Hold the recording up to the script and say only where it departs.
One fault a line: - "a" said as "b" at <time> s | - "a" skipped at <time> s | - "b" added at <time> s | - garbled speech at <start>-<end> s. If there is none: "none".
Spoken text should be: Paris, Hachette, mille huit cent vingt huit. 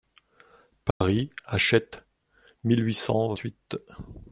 - "vingt" skipped at 3.4 s